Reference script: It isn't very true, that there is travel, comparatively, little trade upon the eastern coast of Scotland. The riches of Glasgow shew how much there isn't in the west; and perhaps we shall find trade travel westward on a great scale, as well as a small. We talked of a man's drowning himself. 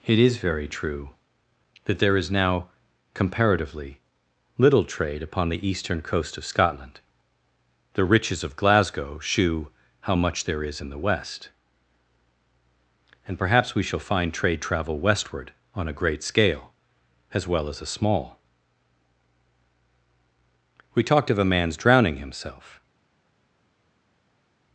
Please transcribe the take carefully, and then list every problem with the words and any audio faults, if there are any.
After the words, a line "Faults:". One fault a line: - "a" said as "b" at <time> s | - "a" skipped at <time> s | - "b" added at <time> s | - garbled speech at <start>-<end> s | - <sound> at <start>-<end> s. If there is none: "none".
It is very true, that there is now, comparatively, little trade upon the eastern coast of Scotland. The riches of Glasgow shew how much there is in the west; and perhaps we shall find trade travel westward on a great scale, as well as a small. We talked of a man's drowning himself.
Faults:
- "isn't" said as "is" at 0.2 s
- "travel" said as "now" at 2.3 s
- "isn't" said as "is" at 10.6 s